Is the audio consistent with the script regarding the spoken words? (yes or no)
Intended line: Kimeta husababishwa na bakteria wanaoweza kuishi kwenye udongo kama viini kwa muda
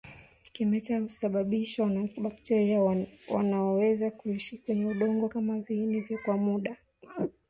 yes